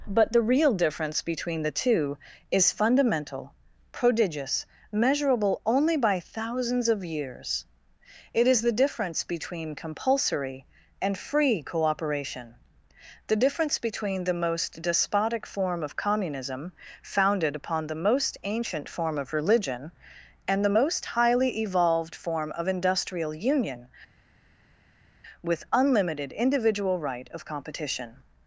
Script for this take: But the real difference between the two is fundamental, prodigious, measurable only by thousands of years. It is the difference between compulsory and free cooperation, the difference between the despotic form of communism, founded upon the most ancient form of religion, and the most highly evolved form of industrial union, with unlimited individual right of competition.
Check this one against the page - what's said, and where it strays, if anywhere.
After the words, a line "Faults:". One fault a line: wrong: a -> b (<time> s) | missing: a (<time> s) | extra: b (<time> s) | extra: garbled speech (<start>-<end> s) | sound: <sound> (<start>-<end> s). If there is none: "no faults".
But the real difference between the two is fundamental, prodigious, measurable only by thousands of years. It is the difference between compulsory and free cooperation, the difference between the most despotic form of communism, founded upon the most ancient form of religion, and the most highly evolved form of industrial union, with unlimited individual right of competition.
Faults:
extra: most (14.3 s)